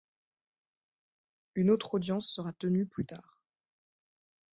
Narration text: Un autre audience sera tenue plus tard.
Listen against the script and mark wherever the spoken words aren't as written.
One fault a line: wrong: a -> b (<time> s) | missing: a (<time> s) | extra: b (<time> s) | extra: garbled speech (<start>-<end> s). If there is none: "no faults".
wrong: Un -> Une (1.5 s)